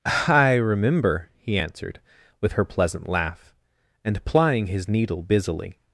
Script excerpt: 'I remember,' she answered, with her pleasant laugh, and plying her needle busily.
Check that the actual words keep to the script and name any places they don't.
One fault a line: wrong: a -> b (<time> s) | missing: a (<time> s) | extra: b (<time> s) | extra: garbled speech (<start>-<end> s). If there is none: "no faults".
wrong: she -> he (1.4 s)
wrong: her -> his (4.7 s)